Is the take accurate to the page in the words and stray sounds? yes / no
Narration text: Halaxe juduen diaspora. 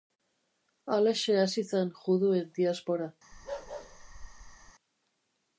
no